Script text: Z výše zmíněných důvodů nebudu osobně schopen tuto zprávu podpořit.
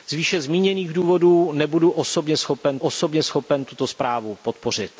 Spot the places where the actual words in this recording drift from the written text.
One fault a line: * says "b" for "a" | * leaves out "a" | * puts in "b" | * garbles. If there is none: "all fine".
* puts in "osobně schopen"